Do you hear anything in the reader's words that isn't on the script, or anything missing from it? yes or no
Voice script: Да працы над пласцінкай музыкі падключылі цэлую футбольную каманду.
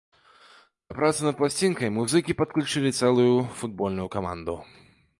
no